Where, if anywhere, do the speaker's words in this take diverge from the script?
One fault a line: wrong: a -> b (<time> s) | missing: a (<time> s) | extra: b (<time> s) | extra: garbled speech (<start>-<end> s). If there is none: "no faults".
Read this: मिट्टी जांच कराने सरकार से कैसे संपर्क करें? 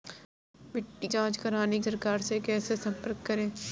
no faults